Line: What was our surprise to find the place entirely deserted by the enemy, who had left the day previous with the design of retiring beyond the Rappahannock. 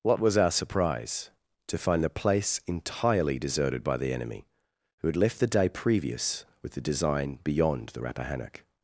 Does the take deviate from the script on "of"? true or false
true